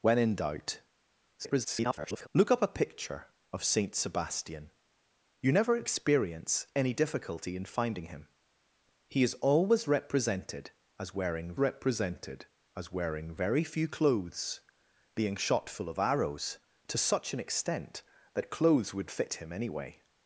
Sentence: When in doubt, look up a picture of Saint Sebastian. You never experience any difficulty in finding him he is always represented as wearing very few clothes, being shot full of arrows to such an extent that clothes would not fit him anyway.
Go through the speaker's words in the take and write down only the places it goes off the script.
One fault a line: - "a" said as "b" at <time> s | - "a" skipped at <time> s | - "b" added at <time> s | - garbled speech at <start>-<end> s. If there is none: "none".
- garbled speech at 1.4-2.3 s
- "represented as wearing" added at 11.6 s
- "not" skipped at 19.1 s